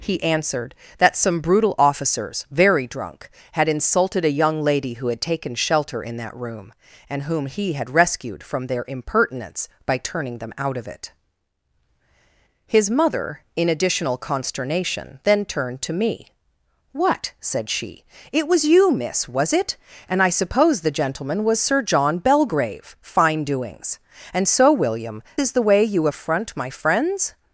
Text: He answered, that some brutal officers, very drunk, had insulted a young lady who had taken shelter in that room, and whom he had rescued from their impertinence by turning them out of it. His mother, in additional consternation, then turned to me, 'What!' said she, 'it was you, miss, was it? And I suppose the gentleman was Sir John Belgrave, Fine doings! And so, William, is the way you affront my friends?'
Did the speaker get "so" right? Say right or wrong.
right